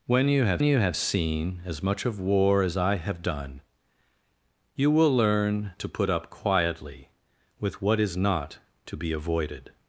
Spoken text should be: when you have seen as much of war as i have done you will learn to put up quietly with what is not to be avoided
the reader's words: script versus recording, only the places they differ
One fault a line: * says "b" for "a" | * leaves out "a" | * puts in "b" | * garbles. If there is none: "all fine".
* puts in "you have"